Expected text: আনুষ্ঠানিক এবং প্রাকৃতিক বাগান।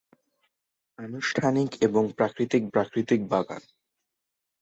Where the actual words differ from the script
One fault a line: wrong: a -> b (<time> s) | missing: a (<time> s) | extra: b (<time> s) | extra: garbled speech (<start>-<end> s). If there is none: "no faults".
extra: প্রাকৃতিক (2.7 s)